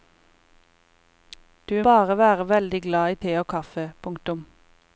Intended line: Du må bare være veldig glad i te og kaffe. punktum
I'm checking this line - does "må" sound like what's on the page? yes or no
no